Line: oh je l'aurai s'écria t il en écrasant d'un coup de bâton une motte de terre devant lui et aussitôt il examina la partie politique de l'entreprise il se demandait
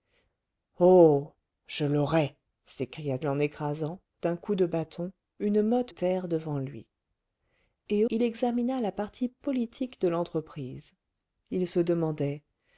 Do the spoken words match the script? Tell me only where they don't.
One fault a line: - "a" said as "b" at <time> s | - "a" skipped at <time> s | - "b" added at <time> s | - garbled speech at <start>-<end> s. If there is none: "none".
- "t" skipped at 3.2 s
- "de" skipped at 5.9 s
- "aussitôt" skipped at 8.0 s